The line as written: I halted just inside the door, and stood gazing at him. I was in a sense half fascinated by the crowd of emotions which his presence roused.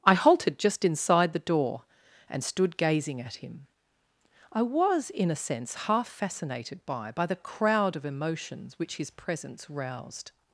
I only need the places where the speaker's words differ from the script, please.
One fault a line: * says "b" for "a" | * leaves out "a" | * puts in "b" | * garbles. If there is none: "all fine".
* puts in "by"